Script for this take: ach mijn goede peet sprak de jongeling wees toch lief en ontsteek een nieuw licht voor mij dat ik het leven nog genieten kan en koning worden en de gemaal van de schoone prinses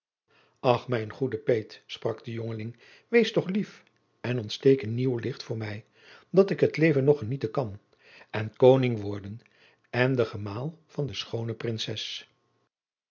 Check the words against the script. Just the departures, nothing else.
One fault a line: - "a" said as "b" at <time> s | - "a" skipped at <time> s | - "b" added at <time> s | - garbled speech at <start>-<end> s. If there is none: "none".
none